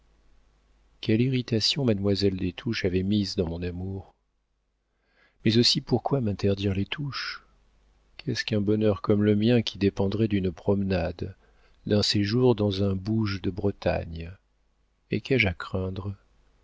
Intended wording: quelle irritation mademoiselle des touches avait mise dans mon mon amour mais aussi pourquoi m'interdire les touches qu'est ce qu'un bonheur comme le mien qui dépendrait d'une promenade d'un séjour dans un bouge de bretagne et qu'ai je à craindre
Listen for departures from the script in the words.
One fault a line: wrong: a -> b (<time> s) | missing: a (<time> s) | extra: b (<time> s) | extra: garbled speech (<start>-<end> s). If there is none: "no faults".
missing: mon (3.6 s)